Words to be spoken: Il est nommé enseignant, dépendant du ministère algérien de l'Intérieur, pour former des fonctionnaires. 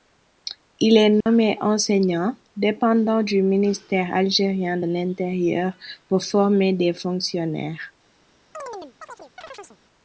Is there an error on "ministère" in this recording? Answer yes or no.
no